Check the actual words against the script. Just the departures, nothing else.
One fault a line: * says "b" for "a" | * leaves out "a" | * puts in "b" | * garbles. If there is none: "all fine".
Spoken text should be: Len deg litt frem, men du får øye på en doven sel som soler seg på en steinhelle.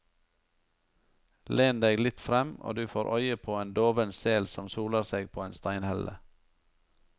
* says "og" for "men"